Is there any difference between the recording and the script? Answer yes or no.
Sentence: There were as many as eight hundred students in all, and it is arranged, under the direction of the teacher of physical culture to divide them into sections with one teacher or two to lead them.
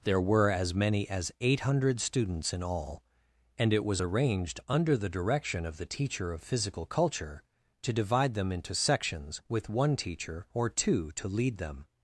yes